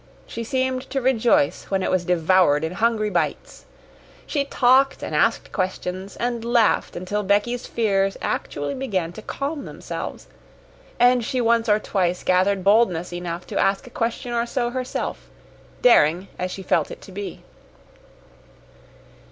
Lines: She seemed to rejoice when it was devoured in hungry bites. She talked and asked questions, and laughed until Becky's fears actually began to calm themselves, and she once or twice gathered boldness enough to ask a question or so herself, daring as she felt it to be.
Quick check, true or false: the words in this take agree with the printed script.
true